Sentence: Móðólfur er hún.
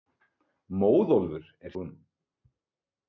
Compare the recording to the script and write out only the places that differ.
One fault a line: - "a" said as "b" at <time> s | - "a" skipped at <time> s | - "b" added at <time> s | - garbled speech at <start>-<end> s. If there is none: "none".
none